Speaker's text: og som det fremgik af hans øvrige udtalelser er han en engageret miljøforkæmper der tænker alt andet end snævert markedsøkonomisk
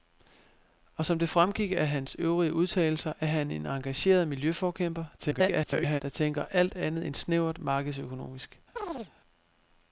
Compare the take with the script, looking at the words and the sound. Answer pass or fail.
fail